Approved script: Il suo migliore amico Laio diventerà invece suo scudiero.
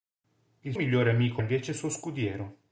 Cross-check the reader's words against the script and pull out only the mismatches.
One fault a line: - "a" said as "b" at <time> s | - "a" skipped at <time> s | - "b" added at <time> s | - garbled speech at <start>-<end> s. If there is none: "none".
- "suo" skipped at 0.7 s
- "Laio diventerà" skipped at 1.4 s